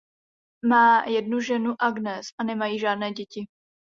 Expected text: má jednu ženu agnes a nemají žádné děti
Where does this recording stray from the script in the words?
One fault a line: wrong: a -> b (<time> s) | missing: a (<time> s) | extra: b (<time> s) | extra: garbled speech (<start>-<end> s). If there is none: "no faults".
no faults